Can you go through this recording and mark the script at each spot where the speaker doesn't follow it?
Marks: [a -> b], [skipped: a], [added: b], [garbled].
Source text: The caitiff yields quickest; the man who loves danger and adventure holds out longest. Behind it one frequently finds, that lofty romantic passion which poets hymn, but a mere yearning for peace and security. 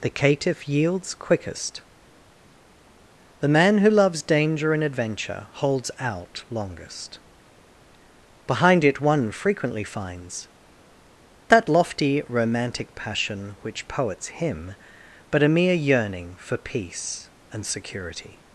The caitiff yields quickest; the man who loves danger and adventure holds out longest. Behind it one frequently finds, that lofty romantic passion which poets hymn, but a mere yearning for peace and security.